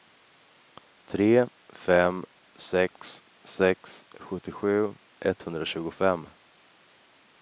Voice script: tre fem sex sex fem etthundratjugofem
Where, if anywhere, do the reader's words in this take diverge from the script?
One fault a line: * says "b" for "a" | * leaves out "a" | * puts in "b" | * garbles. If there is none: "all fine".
* says "sjuttiosju" for "fem"